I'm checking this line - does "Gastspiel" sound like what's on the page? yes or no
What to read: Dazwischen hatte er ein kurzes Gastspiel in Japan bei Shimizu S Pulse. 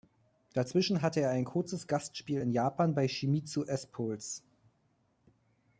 yes